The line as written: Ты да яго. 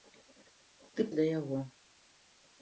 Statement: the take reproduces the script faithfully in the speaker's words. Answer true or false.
true